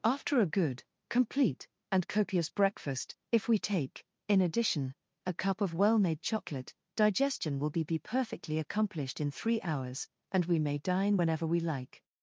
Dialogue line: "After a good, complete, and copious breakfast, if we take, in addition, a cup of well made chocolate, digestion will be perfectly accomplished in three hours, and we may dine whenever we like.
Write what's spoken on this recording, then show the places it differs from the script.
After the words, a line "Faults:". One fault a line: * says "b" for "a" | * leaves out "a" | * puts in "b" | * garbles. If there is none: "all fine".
"After a good, complete, and copious breakfast, if we take, in addition, a cup of well made chocolate, digestion will be be perfectly accomplished in three hours, and we may dine whenever we like.
Faults:
* puts in "be"